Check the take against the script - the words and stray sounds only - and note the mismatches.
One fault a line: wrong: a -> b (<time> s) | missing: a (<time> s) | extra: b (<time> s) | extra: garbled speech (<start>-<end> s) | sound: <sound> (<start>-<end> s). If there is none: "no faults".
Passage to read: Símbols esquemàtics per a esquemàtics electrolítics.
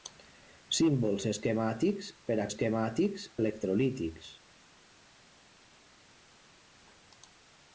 no faults